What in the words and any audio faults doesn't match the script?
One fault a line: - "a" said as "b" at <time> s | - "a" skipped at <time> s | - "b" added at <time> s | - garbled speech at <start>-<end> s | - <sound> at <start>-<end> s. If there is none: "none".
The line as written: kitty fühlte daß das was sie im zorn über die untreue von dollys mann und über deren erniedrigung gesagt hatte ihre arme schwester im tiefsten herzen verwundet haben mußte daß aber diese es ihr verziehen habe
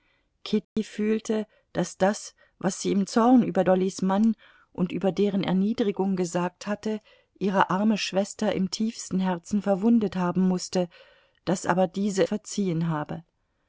- dropout at 0.6-0.8 s
- "die untreue von" skipped at 3.6 s
- "es ihr" skipped at 12.2 s